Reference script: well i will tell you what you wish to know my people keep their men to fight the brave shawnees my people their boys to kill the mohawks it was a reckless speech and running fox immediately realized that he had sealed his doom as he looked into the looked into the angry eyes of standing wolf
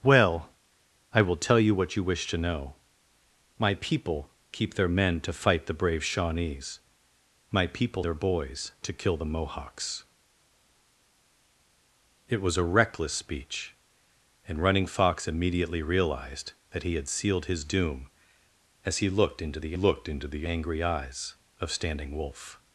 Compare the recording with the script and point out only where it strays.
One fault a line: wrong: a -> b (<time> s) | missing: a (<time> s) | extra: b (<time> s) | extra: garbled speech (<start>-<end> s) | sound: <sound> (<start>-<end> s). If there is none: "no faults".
no faults